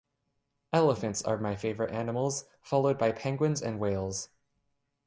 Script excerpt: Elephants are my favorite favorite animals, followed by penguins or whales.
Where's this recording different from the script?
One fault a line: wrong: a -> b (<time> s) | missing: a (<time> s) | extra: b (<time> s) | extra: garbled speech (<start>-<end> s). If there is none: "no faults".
missing: favorite (1.9 s)
wrong: or -> and (3.6 s)